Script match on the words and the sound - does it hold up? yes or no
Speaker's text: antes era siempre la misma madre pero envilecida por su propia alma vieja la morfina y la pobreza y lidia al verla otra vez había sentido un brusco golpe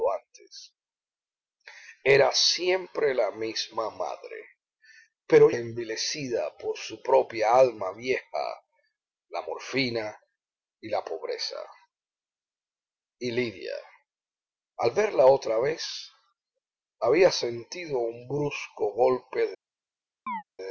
no